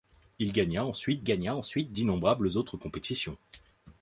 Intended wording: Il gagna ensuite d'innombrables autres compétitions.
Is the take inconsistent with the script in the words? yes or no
yes